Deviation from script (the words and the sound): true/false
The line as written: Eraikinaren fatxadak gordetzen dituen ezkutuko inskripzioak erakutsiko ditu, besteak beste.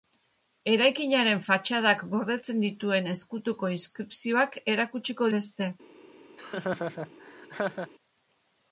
true